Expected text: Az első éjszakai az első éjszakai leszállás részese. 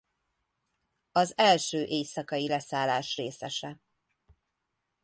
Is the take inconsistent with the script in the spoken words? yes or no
yes